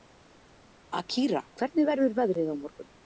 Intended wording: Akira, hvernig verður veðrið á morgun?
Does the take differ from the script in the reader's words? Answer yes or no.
no